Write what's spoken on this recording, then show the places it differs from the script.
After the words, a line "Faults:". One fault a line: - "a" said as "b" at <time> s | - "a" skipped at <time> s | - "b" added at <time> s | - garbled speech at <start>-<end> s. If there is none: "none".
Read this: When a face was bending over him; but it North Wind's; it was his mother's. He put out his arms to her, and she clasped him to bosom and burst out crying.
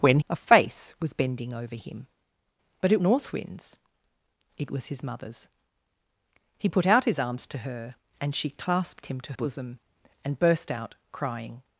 When a face was bending over him; but it North Wind's; it was his mother's. He put out his arms to her, and she clasped him to bosom and burst out crying.
Faults:
none